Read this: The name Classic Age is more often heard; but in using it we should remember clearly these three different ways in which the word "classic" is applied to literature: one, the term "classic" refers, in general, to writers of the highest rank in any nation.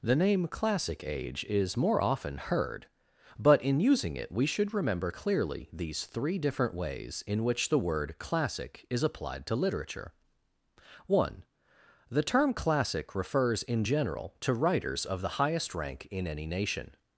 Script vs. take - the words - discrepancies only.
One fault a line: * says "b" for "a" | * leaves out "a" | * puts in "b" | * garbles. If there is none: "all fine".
all fine